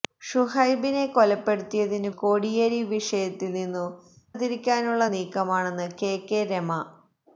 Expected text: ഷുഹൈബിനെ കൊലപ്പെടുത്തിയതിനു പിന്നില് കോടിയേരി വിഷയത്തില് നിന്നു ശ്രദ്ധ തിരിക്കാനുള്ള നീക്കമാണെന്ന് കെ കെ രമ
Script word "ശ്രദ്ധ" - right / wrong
wrong